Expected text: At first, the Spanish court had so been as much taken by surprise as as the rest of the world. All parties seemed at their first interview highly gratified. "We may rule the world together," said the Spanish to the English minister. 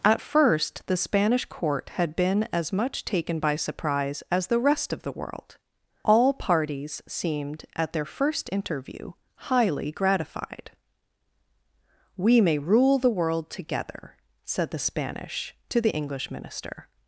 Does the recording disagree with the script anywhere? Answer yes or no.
yes